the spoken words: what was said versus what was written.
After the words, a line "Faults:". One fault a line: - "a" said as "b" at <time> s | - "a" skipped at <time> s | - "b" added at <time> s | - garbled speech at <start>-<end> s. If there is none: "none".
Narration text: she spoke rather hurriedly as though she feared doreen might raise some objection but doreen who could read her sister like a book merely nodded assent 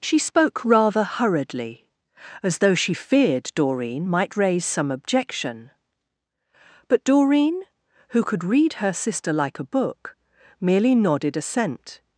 she spoke rather hurriedly as though she feared doreen might raise some objection but doreen who could read her sister like a book merely nodded assent
Faults:
none